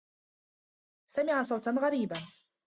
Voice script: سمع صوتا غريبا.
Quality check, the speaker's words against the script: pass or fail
pass